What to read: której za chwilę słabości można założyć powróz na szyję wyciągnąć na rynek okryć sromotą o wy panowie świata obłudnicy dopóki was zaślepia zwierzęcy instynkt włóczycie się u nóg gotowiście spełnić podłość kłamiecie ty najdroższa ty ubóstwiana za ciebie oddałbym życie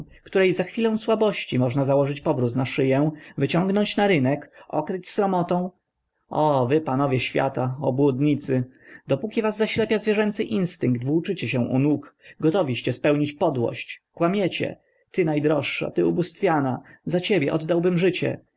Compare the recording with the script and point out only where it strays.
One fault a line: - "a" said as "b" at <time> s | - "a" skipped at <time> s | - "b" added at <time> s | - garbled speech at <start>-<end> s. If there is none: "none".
none